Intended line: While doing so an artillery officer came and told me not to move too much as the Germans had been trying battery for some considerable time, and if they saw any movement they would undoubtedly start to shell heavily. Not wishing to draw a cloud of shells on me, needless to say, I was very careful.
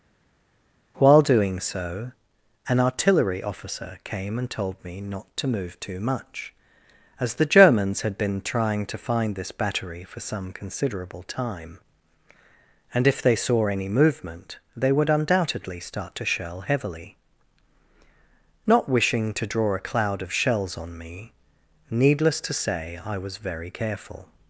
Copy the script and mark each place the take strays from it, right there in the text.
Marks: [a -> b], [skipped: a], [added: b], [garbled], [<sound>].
While doing so an artillery officer came and told me not to move too much as the Germans had been trying [added: to find this] battery for some considerable time, and if they saw any movement they would undoubtedly start to shell heavily. Not wishing to draw a cloud of shells on me, needless to say, I was very careful.